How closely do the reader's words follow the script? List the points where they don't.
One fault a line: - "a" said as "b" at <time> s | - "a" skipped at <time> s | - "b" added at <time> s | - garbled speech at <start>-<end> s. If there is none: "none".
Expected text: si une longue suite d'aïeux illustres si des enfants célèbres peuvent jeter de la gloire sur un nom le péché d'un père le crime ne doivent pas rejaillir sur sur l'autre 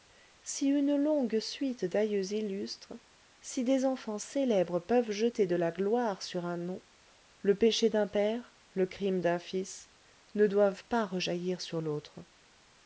- "d'un fils" added at 9.2 s
- "sur" skipped at 11.8 s